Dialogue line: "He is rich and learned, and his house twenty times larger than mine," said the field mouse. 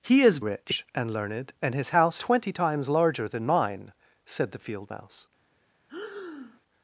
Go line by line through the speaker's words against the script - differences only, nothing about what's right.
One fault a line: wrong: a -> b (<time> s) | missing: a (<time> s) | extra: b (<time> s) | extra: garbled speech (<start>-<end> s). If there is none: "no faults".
no faults